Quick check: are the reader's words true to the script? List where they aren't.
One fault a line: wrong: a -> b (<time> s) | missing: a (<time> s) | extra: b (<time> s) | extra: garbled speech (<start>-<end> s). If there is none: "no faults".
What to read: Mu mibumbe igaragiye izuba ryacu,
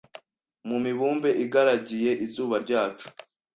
no faults